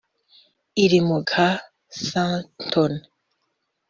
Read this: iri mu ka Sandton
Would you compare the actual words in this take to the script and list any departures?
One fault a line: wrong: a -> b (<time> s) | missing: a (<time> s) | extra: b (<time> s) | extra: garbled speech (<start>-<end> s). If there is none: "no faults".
no faults